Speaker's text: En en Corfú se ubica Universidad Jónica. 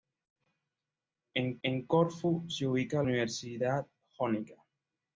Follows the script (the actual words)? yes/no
yes